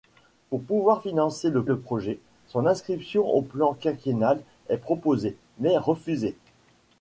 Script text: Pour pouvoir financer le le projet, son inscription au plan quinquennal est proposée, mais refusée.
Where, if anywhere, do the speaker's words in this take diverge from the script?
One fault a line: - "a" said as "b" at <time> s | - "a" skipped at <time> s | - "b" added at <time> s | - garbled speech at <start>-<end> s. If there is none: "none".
none